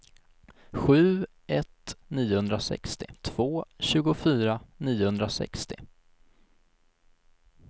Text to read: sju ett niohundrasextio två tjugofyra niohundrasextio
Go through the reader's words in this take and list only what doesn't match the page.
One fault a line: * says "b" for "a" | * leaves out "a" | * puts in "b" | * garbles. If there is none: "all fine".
all fine